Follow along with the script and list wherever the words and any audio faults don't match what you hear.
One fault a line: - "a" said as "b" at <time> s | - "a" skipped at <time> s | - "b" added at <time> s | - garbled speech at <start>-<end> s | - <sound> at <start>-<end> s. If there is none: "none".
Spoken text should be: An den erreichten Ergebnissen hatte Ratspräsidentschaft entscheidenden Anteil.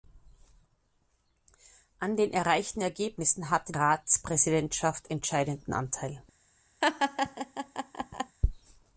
- laugh at 6.8-8.4 s